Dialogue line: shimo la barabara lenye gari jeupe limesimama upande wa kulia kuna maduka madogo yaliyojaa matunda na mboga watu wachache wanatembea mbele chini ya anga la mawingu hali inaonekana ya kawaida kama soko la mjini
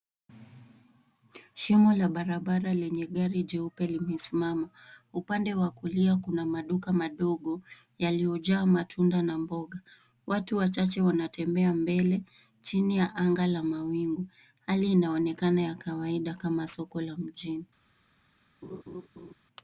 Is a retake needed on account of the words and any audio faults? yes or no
yes